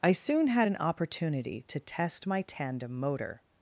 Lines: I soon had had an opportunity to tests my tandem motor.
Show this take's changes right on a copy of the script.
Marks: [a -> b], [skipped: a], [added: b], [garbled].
I soon had [skipped: had] an opportunity to [tests -> test] my tandem motor.